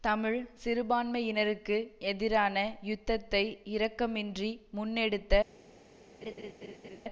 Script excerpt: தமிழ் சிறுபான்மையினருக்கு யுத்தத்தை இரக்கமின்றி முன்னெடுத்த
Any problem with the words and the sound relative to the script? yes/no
yes